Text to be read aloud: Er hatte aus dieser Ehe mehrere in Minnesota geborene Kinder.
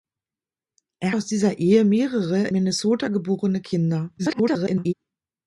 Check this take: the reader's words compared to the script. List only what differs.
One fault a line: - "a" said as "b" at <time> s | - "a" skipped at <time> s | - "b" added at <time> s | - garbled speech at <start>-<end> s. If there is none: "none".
- "hatte" skipped at 1.1 s
- "in" skipped at 2.5 s
- garbled speech at 4.2-4.9 s